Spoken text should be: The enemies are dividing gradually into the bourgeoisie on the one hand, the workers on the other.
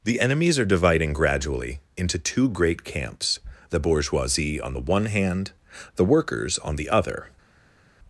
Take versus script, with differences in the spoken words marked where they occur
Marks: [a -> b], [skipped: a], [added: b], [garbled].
The enemies are dividing gradually into [added: two great camps] the bourgeoisie on the one hand, the workers on the other.